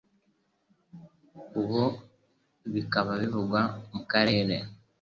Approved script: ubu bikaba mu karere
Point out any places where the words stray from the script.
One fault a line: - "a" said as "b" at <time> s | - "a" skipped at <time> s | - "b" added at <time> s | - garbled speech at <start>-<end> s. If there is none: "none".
- "bivugwa" added at 3.2 s